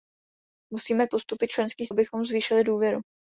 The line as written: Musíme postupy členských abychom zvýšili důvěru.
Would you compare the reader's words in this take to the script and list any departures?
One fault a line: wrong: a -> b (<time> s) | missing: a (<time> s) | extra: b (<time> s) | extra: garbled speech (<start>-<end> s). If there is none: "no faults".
no faults